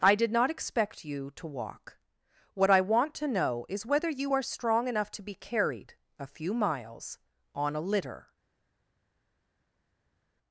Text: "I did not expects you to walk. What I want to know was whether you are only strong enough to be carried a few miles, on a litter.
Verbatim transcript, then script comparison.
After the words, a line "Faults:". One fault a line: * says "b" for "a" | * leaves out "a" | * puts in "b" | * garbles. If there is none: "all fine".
"I did not expect you to walk. What I want to know is whether you are strong enough to be carried a few miles, on a litter.
Faults:
* says "expect" for "expects"
* says "is" for "was"
* leaves out "only"